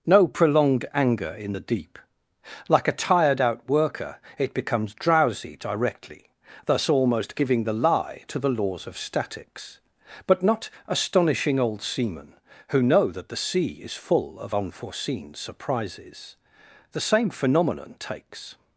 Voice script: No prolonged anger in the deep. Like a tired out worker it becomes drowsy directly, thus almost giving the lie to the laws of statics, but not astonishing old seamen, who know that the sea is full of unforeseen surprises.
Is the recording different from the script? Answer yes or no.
yes